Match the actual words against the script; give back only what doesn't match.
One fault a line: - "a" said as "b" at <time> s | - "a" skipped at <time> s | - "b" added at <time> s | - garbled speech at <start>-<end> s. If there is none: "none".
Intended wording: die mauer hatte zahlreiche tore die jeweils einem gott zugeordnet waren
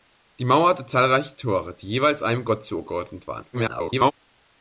- garbled speech at 3.5-4.1 s